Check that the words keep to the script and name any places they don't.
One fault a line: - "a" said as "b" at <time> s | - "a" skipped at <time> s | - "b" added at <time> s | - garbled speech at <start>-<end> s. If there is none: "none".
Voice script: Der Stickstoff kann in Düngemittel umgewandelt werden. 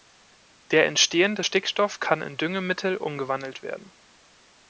- "entstehende" added at 0.9 s